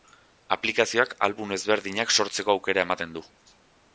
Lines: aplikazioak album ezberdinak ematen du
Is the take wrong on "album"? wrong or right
right